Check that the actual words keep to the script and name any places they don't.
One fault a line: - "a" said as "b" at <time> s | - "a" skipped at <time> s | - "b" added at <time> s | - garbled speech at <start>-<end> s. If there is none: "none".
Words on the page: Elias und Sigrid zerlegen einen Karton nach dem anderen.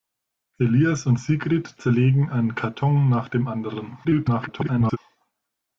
- garbled speech at 4.0-5.0 s